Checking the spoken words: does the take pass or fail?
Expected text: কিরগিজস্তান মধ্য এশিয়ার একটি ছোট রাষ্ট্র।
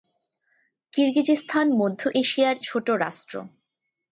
fail